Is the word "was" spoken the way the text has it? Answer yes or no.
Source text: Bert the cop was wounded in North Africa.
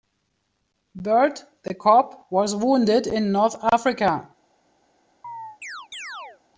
yes